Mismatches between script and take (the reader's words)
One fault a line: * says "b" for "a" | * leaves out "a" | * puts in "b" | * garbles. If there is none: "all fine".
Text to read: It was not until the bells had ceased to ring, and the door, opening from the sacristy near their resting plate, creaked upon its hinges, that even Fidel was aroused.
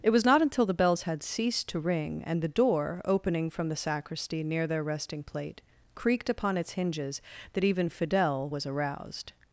all fine